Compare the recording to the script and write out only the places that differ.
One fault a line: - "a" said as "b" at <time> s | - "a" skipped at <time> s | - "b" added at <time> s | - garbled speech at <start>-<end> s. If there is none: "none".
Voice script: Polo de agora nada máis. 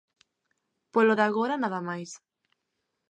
none